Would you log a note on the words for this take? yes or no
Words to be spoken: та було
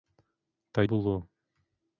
no